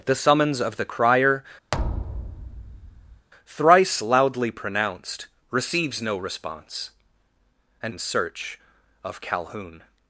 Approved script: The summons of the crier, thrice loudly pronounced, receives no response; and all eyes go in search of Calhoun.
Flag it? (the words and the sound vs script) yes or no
yes